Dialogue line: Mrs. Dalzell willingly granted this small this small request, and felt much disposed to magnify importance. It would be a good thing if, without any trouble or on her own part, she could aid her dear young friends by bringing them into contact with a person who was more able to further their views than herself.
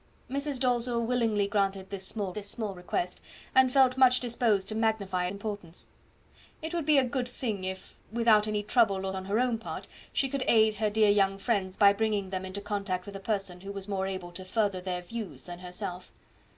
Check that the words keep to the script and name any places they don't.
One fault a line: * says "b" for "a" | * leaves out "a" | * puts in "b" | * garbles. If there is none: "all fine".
all fine